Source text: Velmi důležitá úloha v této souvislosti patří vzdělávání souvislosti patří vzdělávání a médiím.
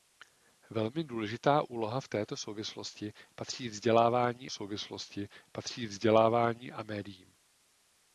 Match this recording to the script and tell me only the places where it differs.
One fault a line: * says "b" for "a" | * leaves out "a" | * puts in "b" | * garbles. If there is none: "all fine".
all fine